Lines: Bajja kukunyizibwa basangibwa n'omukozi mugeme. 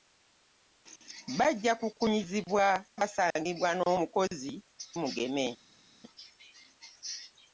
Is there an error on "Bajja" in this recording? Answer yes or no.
no